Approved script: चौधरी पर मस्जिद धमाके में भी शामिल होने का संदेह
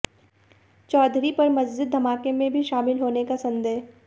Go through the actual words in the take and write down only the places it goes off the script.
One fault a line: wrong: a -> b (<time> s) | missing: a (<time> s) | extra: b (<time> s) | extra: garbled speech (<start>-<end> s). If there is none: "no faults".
no faults